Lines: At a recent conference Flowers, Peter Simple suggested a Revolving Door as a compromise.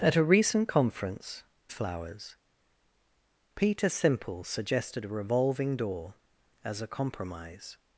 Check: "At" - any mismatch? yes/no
no